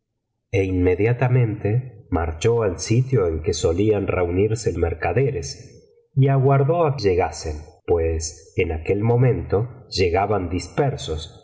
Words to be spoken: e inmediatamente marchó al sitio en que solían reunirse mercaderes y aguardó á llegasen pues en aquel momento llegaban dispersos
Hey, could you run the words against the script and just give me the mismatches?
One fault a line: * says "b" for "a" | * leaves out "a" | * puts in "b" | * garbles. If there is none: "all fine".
all fine